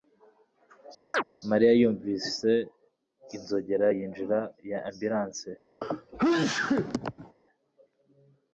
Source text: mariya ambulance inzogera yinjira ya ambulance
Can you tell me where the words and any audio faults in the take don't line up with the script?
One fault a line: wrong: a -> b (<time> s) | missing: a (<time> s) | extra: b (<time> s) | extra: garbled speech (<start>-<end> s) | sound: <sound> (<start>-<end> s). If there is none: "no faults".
sound: chirp (1.1-1.2 s)
wrong: ambulance -> yumvise (1.8 s)
sound: sneeze (5.8-7.4 s)